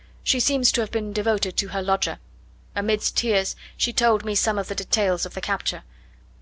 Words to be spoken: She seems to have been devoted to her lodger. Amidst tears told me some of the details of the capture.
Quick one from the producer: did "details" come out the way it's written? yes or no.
yes